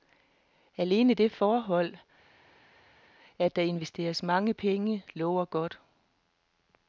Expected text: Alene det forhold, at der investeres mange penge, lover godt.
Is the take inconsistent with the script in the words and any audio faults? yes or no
no